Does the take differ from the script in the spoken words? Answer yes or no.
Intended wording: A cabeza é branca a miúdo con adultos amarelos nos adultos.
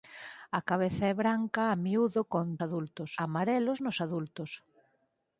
no